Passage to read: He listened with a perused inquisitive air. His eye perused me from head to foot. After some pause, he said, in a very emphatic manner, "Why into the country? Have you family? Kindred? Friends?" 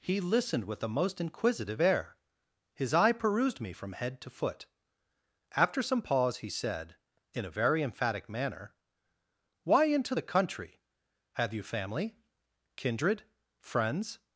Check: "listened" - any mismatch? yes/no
no